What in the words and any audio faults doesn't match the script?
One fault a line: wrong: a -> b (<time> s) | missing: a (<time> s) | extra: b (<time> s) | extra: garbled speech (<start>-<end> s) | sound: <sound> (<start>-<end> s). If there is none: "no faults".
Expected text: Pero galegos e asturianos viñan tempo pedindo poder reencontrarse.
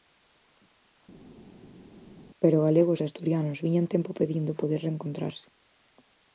no faults